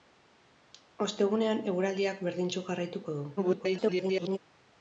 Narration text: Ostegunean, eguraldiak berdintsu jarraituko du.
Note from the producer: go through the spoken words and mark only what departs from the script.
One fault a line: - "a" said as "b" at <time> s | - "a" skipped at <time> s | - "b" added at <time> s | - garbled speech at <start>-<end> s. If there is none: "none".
- garbled speech at 3.4-4.4 s